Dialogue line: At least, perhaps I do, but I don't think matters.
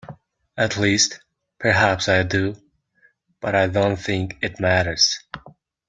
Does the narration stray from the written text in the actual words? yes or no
yes